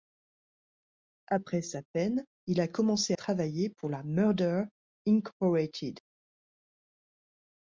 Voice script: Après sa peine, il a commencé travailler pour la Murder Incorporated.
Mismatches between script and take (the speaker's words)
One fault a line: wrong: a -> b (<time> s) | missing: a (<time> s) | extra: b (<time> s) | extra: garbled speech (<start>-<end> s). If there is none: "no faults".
no faults